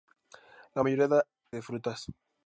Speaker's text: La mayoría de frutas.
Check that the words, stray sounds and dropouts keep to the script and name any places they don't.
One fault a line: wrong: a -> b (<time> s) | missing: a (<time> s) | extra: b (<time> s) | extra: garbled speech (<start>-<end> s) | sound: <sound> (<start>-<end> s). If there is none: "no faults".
no faults